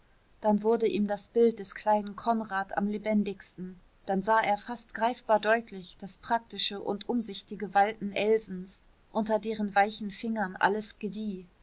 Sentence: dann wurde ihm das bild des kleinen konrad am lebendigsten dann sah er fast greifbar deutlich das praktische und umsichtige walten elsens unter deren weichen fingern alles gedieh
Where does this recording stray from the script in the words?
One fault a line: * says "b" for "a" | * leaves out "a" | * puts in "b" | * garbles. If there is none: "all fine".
all fine